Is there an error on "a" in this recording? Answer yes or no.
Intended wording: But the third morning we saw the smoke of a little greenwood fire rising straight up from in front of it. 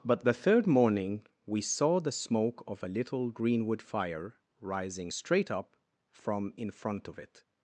no